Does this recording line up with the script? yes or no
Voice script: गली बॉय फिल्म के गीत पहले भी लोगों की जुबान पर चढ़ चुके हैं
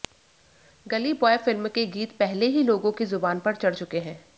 no